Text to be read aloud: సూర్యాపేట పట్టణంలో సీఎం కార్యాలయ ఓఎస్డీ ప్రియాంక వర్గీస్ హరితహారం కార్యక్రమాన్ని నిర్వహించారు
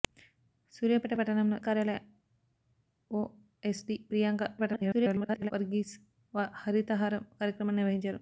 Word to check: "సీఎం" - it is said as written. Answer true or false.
false